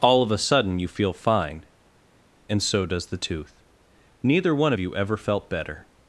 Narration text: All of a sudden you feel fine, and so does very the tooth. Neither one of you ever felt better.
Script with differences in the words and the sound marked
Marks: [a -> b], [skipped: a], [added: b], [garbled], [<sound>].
All of a sudden you feel fine, and so does [skipped: very] the tooth. Neither one of you ever felt better.